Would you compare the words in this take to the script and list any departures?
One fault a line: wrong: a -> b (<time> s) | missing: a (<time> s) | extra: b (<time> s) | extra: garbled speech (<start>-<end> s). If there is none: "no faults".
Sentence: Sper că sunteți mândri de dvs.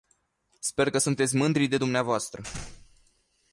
no faults